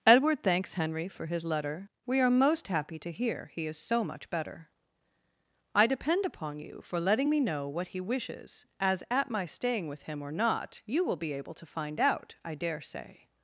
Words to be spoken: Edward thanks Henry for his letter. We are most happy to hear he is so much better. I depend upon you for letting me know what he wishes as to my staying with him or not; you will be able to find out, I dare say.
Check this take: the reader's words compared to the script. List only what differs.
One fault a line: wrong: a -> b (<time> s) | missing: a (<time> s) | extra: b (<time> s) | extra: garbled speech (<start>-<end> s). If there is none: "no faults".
wrong: to -> at (9.1 s)